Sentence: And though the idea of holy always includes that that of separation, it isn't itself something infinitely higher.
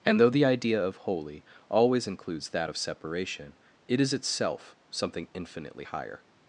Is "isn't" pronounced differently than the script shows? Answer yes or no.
yes